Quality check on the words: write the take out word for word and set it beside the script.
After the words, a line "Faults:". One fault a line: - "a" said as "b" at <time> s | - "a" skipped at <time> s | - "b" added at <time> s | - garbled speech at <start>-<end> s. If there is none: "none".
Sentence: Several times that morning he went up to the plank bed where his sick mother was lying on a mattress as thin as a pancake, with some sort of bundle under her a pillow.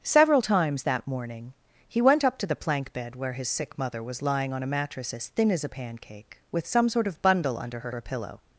Several times that morning he went up to the plank bed where his sick mother was lying on a mattress as thin as a pancake, with some sort of bundle under her a pillow.
Faults:
none